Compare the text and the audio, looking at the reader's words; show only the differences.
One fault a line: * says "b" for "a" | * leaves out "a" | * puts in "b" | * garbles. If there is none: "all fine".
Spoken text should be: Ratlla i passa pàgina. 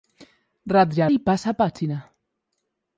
all fine